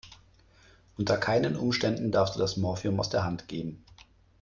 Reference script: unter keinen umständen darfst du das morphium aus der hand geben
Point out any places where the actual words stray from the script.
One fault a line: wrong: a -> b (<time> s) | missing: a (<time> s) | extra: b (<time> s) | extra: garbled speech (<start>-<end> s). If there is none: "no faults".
no faults